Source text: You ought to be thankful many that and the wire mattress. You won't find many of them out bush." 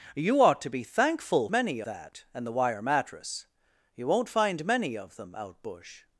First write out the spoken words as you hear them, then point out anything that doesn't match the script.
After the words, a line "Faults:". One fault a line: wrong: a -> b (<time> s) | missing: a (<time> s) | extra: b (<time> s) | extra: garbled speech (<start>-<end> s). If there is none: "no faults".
You ought to be thankful many that and the wire mattress. You won't find many of them out bush."
Faults:
no faults